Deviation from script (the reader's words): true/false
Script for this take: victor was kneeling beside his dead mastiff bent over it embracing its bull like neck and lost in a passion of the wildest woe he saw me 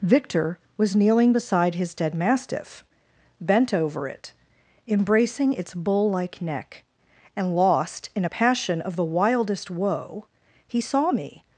false